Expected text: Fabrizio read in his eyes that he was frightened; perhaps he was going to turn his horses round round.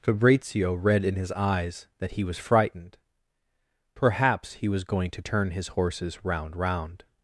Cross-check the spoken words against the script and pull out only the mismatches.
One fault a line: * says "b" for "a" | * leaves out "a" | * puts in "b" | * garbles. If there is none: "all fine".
all fine